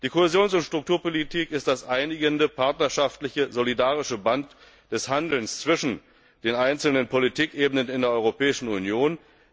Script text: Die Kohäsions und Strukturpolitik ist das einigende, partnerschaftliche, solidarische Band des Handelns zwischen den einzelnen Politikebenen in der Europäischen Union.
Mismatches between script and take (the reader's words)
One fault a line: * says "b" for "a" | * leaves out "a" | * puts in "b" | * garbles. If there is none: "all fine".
all fine